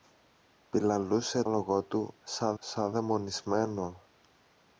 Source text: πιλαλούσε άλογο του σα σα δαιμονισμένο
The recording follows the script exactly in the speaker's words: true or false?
true